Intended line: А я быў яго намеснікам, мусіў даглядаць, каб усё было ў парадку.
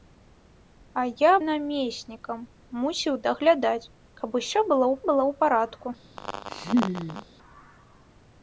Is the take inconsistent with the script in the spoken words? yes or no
yes